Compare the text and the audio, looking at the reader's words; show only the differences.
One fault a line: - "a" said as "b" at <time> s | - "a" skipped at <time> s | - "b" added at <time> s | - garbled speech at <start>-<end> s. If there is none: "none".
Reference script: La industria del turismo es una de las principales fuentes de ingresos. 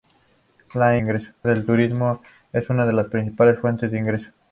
- "industria" said as "ingresos" at 1.0 s